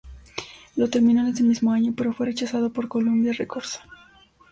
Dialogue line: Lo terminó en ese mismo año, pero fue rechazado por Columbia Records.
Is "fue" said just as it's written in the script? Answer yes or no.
yes